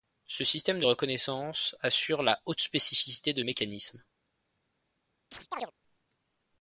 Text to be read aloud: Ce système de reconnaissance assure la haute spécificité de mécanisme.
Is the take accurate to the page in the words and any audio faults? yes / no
no